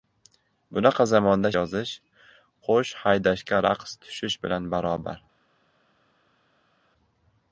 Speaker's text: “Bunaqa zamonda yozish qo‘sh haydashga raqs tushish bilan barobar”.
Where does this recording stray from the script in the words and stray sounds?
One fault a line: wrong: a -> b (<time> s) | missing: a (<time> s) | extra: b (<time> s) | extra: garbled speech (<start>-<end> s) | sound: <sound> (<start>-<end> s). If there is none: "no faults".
no faults